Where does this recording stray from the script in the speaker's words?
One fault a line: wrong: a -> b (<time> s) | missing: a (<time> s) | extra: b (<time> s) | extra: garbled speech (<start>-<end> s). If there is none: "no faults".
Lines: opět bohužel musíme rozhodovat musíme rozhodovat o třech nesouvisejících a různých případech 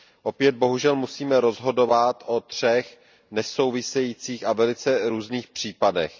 missing: musíme rozhodovat (2.2 s)
extra: velice (4.5 s)